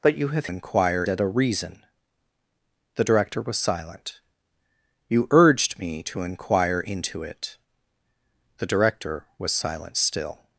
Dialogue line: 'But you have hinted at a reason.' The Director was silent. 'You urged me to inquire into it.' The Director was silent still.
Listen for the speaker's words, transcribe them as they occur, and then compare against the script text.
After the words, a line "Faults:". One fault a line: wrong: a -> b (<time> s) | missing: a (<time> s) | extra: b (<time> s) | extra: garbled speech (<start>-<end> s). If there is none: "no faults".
'But you have inquire at a reason.' The Director was silent. 'You urged me to inquire into it.' The Director was silent still.
Faults:
wrong: hinted -> inquire (0.4 s)